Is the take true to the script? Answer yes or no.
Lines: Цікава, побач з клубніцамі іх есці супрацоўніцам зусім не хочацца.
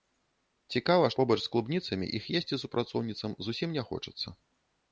yes